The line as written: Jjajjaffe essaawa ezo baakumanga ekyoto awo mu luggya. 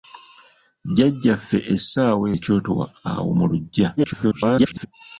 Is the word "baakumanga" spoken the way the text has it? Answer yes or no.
no